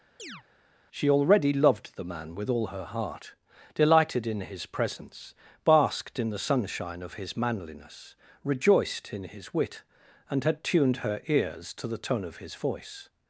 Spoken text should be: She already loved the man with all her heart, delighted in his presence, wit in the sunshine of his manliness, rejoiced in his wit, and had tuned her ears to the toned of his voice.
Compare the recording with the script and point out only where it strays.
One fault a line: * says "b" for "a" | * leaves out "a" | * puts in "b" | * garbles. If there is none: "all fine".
* says "basked" for "wit"
* says "tone" for "toned"